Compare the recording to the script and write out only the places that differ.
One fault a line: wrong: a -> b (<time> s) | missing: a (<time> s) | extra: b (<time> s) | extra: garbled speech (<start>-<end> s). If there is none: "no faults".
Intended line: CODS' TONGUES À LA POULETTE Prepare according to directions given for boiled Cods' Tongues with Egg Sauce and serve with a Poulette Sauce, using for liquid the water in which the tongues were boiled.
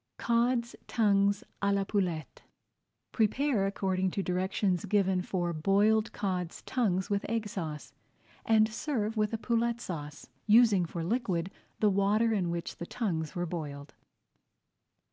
no faults